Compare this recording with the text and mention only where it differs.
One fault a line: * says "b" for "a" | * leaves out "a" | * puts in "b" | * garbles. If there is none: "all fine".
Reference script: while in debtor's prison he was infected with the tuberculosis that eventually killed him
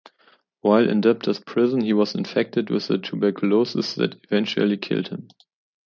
all fine